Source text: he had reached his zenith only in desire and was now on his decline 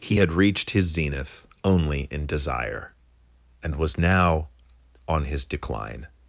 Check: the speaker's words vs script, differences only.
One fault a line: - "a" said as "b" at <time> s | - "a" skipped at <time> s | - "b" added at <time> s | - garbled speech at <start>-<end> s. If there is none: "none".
none